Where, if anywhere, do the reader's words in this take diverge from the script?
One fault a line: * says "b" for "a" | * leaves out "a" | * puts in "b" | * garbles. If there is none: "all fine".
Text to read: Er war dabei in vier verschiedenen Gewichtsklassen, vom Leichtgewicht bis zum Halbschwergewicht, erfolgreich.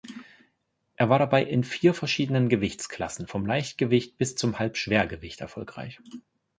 all fine